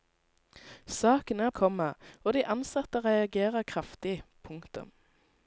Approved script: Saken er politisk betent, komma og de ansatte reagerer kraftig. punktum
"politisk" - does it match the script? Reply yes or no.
no